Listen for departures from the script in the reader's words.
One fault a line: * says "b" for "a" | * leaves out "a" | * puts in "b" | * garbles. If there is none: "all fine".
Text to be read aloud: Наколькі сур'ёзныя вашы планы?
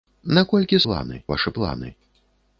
* says "планы" for "сур'ёзныя"